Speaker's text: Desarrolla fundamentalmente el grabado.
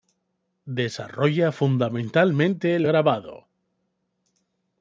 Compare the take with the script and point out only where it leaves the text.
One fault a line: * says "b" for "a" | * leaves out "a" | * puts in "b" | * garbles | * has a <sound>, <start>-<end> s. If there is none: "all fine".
all fine